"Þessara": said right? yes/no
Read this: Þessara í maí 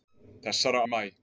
yes